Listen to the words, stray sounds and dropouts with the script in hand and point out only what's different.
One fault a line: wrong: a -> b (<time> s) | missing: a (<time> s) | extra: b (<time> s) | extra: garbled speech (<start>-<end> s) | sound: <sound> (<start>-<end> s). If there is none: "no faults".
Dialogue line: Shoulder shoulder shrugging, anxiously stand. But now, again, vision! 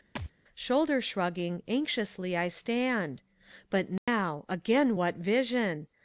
sound: thud (0.2-0.3 s)
missing: shoulder (1.0 s)
extra: I (2.4 s)
sound: dropout (4.0-4.1 s)
extra: what (5.0 s)